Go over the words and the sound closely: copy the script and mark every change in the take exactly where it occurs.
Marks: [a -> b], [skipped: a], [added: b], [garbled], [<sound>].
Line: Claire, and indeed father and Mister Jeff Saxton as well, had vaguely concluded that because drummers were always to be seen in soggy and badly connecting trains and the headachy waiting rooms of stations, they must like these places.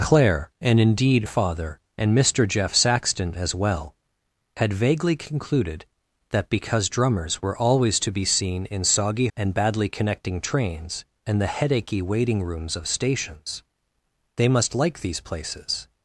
Claire, and indeed father and Mister Jeff Saxton as well, had vaguely concluded that because drummers were always to be seen in soggy and badly connecting trains and the headachy waiting rooms of stations, they must like these places.